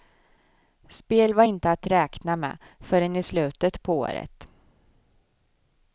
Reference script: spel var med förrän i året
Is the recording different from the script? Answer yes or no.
yes